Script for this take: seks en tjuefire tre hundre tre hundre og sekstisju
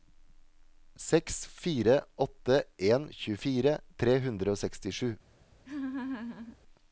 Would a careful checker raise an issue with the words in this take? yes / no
yes